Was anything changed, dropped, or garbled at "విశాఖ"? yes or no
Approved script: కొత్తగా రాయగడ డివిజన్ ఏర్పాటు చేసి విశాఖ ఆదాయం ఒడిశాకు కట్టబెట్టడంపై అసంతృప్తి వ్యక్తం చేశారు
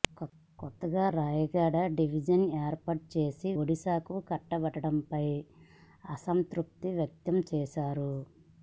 yes